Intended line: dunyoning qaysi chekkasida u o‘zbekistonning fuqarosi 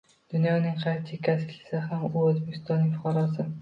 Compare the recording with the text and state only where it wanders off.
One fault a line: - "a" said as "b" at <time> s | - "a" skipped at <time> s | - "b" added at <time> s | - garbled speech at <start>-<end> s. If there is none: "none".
- "ishlasa ham" added at 1.6 s